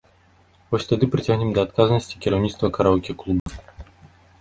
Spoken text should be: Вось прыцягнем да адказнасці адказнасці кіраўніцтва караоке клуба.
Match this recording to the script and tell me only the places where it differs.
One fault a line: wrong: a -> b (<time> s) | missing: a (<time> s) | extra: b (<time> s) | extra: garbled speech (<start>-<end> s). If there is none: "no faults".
extra: тады (0.9 s)
missing: адказнасці (2.2 s)